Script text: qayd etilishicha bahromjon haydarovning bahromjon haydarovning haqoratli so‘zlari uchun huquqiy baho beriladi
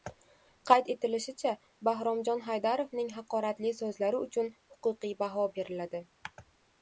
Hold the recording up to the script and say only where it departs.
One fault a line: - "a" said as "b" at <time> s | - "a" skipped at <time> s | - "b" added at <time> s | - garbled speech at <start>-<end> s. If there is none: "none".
- "bahromjon haydarovning" skipped at 3.1 s